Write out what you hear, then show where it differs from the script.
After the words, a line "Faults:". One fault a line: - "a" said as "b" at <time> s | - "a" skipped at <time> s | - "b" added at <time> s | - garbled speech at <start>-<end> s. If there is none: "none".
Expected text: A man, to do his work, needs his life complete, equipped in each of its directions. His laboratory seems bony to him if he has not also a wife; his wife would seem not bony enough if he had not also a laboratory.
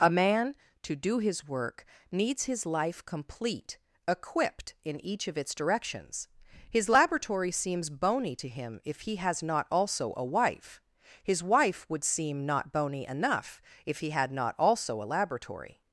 A man, to do his work, needs his life complete, equipped in each of its directions. His laboratory seems bony to him if he has not also a wife; his wife would seem not bony enough if he had not also a laboratory.
Faults:
none